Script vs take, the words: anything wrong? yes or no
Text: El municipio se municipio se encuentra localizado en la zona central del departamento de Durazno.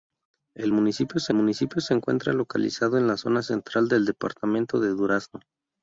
no